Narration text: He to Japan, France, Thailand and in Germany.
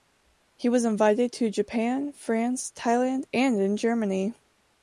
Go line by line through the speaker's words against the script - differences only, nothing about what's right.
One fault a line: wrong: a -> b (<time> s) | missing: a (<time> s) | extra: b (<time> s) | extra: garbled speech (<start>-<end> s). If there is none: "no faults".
extra: was invited (0.7 s)